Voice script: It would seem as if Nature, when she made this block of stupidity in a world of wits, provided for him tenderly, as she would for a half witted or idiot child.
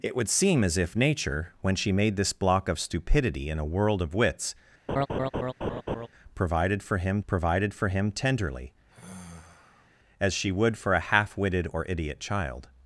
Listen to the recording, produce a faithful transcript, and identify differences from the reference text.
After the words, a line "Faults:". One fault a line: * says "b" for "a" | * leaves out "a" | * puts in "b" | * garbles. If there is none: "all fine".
It would seem as if Nature, when she made this block of stupidity in a world of wits, provided for him provided for him tenderly, as she would for a half witted or idiot child.
Faults:
* puts in "provided for him"